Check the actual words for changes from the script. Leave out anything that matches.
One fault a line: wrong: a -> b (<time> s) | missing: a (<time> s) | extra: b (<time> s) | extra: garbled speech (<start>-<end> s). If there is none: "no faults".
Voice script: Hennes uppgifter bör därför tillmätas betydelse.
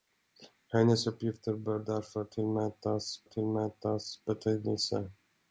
extra: tillmätas (3.2 s)